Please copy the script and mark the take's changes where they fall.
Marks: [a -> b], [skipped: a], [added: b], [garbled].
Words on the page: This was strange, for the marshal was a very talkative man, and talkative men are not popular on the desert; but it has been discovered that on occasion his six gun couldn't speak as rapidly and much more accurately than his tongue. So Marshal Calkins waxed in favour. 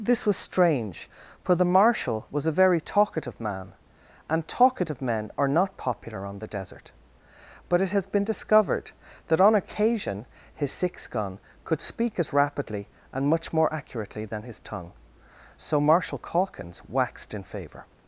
This was strange, for the marshal was a very talkative man, and talkative men are not popular on the desert; but it has been discovered that on occasion his six gun [couldn't -> could] speak as rapidly and much more accurately than his tongue. So Marshal Calkins waxed in favour.